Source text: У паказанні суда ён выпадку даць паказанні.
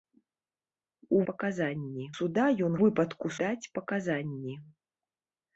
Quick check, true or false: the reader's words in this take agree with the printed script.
true